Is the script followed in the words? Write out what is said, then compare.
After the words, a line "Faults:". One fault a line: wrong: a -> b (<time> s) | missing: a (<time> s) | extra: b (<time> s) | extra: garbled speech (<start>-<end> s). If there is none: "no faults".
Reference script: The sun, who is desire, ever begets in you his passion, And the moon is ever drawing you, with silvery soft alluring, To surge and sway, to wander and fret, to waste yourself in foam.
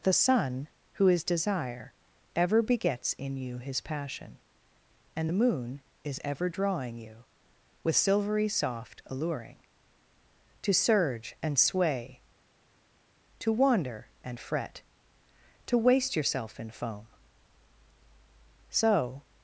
The sun, who is desire, ever begets in you his passion, And the moon is ever drawing you, with silvery soft alluring, To surge and sway, to wander and fret, to waste yourself in foam. So
Faults:
extra: So (18.7 s)